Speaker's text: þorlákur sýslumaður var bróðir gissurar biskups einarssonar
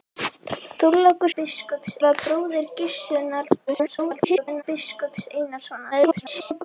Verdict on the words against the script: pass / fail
fail